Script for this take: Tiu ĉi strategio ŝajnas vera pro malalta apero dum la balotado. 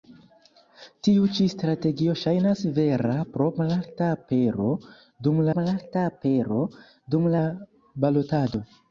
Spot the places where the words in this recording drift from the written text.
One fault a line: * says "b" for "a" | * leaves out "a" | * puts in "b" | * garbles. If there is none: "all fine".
* puts in "malalta apero dum"